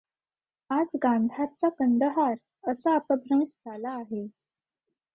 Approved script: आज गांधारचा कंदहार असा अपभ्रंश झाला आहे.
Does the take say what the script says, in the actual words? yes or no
yes